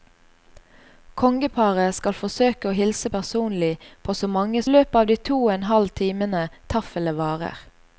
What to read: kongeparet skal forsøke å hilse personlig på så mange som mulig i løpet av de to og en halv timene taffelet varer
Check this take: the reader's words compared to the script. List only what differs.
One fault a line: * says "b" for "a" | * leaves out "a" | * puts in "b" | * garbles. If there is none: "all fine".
* leaves out "som mulig i"